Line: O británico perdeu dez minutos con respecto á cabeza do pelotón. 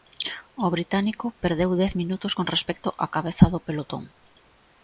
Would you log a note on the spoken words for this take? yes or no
no